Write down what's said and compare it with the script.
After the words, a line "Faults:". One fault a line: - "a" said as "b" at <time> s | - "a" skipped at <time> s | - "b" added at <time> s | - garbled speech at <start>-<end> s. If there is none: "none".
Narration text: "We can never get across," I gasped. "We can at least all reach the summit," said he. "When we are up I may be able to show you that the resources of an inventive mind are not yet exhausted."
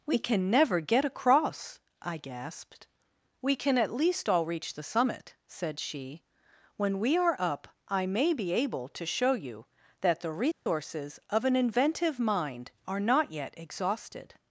"We can never get across," I gasped. "We can at least all reach the summit," said she. "When we are up I may be able to show you that the resources of an inventive mind are not yet exhausted."
Faults:
- "he" said as "she" at 5.8 s